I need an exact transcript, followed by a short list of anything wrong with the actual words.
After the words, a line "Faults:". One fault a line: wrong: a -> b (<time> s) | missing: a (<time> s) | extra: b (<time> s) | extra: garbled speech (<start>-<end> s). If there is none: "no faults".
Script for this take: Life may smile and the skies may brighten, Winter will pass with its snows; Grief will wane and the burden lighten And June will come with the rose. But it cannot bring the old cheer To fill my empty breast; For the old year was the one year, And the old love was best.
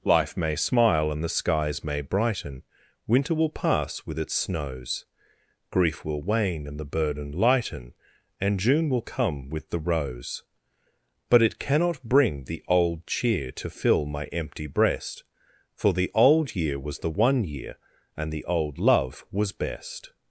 Life may smile and the skies may brighten, Winter will pass with its snows; Grief will wane and the burden lighten And June will come with the rose. But it cannot bring the old cheer To fill my empty breast; For the old year was the one year, And the old love was best.
Faults:
no faults